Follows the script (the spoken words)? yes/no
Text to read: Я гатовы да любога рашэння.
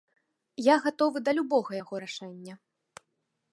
no